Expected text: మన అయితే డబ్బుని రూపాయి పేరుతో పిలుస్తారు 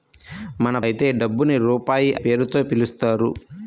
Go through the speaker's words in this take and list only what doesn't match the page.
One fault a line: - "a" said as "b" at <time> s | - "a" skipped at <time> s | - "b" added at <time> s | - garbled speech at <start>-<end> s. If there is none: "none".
none